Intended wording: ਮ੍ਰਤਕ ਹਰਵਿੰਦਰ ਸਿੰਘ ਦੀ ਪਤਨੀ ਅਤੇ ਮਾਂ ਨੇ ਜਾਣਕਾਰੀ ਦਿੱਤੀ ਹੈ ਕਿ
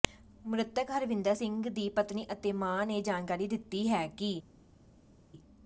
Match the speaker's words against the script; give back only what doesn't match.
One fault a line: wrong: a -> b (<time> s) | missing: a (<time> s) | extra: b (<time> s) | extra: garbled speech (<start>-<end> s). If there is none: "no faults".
no faults